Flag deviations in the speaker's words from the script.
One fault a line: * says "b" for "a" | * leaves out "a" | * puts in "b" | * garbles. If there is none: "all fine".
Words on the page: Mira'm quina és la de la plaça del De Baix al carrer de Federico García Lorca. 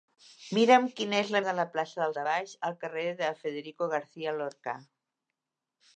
all fine